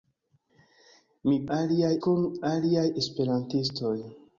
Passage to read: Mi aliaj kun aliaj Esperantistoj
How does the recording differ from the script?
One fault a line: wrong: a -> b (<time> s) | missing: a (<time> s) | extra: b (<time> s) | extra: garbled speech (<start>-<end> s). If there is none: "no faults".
no faults